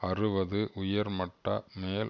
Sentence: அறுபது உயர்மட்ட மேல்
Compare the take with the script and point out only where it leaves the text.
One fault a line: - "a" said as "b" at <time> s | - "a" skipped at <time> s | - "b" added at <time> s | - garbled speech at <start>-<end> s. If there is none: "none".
none